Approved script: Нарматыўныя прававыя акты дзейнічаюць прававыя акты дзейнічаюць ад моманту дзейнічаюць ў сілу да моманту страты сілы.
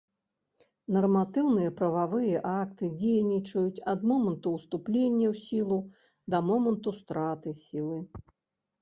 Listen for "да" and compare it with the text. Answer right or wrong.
right